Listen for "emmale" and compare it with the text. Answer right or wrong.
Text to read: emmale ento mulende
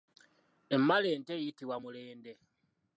right